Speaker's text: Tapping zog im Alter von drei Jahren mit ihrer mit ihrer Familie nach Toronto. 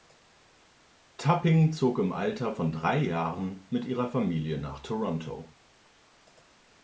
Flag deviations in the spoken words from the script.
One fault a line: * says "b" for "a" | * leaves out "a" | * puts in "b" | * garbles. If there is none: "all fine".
* leaves out "mit ihrer"